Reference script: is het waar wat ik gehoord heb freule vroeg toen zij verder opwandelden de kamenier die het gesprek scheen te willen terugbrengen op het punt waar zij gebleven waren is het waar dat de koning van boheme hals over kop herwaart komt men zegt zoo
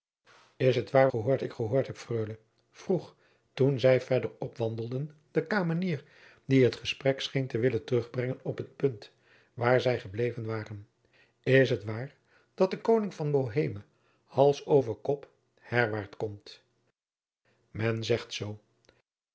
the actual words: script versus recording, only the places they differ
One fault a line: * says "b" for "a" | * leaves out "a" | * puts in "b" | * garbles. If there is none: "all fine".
* says "gehoord" for "wat"